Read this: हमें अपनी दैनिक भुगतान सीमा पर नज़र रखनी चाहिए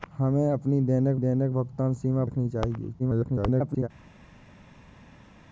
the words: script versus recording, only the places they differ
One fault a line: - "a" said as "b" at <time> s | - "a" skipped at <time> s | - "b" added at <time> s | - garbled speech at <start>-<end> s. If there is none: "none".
- "दैनिक" added at 1.2 s
- "पर नज़र" skipped at 2.2 s
- garbled speech at 3.0-3.9 s